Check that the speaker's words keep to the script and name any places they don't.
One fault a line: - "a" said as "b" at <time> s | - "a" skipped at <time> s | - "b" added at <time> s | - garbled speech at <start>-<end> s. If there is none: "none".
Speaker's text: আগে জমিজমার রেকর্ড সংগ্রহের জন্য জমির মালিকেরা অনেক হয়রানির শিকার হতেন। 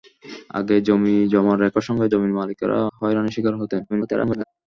- "জন্য" skipped at 2.1 s
- "অনেক" skipped at 2.8 s
- garbled speech at 3.9-4.4 s